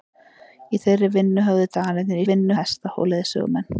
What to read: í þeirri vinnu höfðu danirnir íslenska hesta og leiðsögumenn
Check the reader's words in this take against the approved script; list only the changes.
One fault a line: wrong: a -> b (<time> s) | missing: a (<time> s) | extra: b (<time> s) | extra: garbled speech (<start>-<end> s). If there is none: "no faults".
wrong: íslenska -> vinnu (2.3 s)